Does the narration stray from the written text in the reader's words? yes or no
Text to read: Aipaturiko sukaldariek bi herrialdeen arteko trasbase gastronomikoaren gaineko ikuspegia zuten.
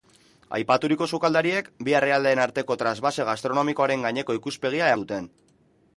no